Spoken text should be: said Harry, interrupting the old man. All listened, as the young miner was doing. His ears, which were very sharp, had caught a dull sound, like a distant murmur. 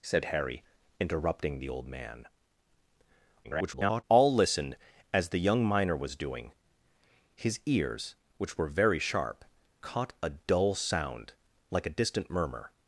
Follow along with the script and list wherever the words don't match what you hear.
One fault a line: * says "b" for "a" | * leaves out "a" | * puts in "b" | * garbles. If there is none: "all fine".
* garbles
* leaves out "had"